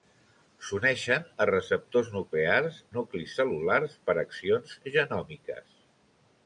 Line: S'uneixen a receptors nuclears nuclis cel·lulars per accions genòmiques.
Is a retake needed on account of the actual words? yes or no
no